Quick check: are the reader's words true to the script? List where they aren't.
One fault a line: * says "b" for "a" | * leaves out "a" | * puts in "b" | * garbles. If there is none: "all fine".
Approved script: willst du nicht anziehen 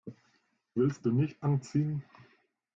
all fine